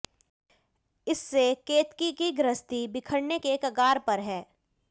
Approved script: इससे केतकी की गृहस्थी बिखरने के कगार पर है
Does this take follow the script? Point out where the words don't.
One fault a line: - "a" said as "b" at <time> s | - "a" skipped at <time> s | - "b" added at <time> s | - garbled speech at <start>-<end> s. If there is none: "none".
none